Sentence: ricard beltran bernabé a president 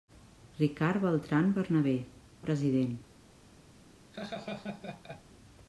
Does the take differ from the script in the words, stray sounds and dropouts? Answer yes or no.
yes